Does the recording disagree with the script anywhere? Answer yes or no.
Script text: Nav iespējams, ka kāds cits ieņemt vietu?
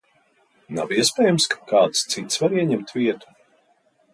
yes